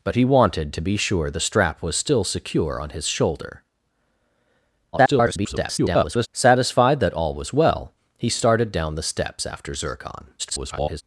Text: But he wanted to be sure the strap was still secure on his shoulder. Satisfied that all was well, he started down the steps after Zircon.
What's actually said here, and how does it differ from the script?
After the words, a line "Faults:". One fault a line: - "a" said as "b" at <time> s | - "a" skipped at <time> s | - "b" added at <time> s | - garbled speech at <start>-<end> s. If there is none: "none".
But he wanted to be sure the strap was still secure on his shoulder. [garbled] Satisfied that all was well, he started down the steps after Zircon. [garbled]
Faults:
- garbled speech at 4.9-6.3 s
- garbled speech at 10.4-11.0 s